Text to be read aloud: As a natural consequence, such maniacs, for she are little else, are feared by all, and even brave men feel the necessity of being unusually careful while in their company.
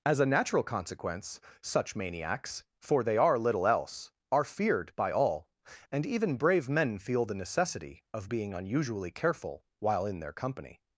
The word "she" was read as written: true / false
false